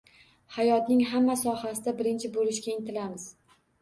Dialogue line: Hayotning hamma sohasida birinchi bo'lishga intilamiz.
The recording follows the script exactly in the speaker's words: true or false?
true